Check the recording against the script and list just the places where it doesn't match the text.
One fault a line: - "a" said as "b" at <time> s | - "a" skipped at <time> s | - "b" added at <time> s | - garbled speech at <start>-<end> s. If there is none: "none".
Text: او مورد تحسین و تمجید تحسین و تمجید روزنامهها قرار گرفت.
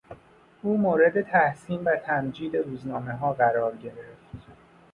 - "تحسین و تمجید" skipped at 2.6 s